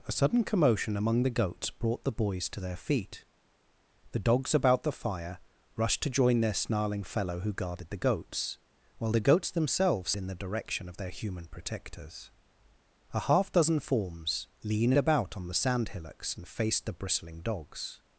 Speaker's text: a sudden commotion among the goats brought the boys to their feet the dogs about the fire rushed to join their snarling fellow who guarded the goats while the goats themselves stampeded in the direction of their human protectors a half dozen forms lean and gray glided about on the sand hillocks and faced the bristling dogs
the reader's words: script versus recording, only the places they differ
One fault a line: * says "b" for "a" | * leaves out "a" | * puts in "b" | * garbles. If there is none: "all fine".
* leaves out "stampeded"
* leaves out "and gray glided"